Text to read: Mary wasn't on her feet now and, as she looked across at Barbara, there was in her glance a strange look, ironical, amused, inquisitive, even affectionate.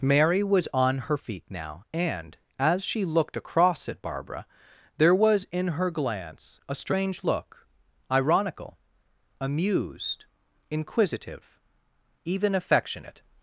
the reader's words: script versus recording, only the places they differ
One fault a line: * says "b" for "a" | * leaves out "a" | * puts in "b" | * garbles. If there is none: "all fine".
* says "was" for "wasn't"